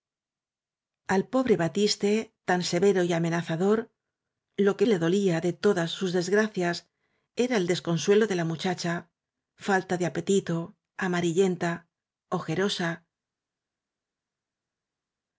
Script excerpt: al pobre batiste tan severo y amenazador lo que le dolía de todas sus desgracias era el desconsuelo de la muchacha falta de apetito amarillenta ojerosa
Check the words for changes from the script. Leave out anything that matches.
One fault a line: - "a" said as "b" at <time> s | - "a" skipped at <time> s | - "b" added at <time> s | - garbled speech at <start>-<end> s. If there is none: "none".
none